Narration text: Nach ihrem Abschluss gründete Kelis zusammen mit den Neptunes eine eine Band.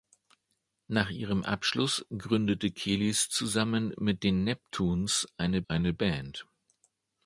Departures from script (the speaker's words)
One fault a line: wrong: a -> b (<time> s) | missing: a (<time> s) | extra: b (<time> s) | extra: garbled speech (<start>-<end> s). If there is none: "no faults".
no faults